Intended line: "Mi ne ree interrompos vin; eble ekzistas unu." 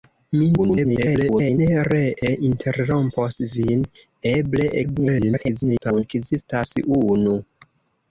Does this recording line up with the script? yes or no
no